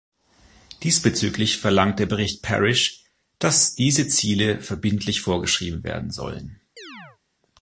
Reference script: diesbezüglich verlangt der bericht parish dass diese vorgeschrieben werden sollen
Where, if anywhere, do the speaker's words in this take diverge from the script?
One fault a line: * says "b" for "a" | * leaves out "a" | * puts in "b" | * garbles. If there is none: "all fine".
* puts in "ziele verbindlich"